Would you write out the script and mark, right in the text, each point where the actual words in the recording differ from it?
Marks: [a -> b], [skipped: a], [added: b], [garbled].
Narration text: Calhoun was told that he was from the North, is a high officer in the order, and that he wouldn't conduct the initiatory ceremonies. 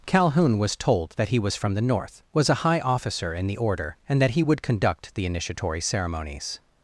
Calhoun was told that he was from the North, [is -> was] a high officer in the order, and that he [wouldn't -> would] conduct the initiatory ceremonies.